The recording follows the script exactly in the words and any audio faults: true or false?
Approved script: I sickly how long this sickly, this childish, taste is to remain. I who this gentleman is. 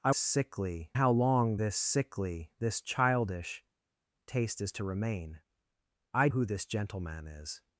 true